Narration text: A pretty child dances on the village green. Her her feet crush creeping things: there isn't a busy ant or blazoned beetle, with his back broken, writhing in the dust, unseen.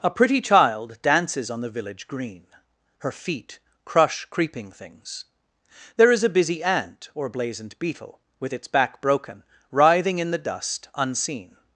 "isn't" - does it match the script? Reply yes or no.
no